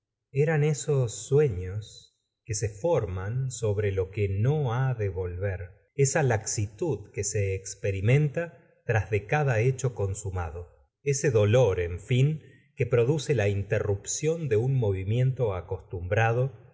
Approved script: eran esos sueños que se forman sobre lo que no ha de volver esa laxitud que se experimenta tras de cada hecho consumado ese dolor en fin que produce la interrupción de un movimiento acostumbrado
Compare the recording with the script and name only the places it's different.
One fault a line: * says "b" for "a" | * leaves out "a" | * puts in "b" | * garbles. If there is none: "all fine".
all fine